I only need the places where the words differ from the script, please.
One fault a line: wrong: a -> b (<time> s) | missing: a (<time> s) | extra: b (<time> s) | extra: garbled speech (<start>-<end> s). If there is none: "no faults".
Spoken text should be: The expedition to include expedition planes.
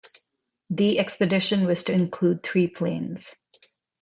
extra: was (1.7 s)
wrong: expedition -> three (2.4 s)